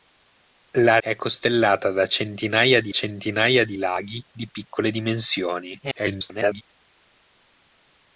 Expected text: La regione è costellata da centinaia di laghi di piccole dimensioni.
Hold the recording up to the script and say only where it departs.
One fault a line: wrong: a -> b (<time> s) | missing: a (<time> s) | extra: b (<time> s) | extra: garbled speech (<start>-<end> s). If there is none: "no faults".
missing: regione (1.0 s)
extra: centinaia di (2.9 s)
extra: garbled speech (5.8-6.6 s)